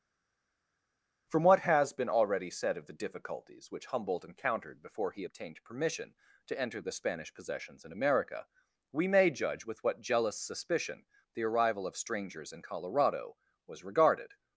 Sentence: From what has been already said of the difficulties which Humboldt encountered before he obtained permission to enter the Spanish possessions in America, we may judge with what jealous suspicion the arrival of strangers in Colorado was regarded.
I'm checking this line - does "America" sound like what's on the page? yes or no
yes